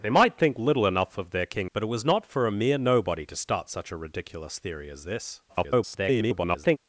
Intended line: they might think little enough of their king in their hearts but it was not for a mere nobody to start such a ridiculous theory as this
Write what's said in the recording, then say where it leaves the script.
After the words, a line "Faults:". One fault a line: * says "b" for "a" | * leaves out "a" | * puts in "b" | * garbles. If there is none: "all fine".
they might think little enough of their king but it was not for a mere nobody to start such a ridiculous theory as this [garbled]
Faults:
* leaves out "in their hearts"
* garbles